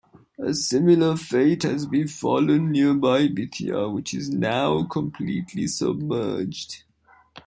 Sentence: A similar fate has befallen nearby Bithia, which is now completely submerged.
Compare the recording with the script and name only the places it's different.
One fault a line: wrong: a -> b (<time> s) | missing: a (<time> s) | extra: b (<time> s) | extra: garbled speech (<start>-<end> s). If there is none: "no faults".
no faults